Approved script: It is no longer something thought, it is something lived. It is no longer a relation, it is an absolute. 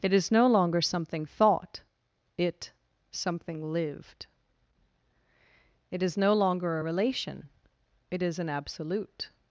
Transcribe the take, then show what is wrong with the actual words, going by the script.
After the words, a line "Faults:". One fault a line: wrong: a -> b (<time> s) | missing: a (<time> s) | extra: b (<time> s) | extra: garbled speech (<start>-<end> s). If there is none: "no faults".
It is no longer something thought, it something lived. It is no longer a relation, it is an absolute.
Faults:
missing: is (2.7 s)